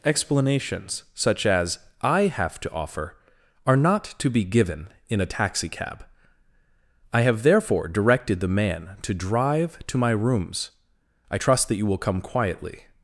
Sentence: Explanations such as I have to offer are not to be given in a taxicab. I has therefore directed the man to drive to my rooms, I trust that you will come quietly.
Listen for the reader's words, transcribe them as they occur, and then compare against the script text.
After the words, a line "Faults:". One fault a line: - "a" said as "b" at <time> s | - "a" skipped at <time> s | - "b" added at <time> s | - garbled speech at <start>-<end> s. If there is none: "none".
Explanations such as I have to offer are not to be given in a taxicab. I have therefore directed the man to drive to my rooms, I trust that you will come quietly.
Faults:
- "has" said as "have" at 7.2 s